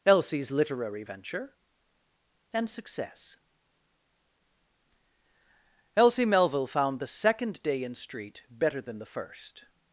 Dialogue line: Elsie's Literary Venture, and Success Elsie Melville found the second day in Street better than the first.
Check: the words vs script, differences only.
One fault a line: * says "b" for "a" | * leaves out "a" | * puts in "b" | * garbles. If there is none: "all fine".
all fine